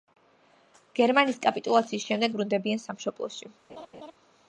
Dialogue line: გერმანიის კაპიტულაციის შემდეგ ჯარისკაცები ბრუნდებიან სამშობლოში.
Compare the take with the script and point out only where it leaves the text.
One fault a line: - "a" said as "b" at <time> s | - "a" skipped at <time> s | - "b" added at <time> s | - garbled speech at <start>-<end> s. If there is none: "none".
- "ჯარისკაცები" skipped at 2.3 s